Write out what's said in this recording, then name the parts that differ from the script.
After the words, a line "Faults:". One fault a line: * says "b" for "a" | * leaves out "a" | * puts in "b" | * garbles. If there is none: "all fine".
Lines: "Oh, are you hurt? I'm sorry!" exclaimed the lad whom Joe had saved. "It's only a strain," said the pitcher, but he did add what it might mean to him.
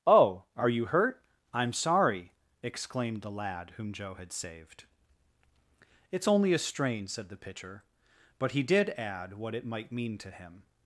"Oh, are you hurt? I'm sorry!" exclaimed the lad whom Joe had saved. "It's only a strain," said the pitcher, but he did add what it might mean to him.
Faults:
all fine